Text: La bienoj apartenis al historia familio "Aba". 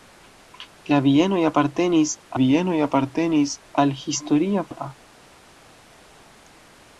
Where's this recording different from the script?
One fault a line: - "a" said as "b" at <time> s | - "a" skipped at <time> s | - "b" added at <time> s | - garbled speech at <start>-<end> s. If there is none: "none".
- "bienoj apartenis" added at 2.4 s
- "familio" skipped at 4.7 s